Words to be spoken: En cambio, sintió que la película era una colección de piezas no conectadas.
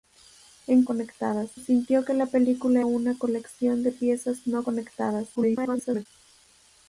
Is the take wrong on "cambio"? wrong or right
wrong